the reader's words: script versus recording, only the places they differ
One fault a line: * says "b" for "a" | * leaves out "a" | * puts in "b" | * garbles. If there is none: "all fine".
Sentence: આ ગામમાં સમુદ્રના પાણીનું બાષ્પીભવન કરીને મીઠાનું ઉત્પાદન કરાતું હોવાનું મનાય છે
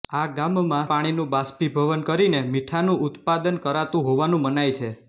* leaves out "સમુદ્રના"